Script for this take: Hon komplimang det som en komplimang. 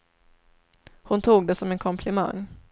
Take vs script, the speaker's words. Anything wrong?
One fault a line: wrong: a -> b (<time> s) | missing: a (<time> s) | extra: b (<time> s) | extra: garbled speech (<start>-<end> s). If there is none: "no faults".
wrong: komplimang -> tog (1.2 s)